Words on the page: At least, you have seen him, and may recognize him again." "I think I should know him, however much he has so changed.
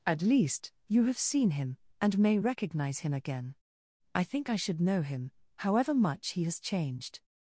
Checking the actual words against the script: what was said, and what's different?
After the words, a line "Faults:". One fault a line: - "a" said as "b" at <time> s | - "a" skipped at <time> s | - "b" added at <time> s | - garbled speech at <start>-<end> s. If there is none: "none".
At least, you have seen him, and may recognize him again." "I think I should know him, however much he has changed.
Faults:
- "so" skipped at 6.6 s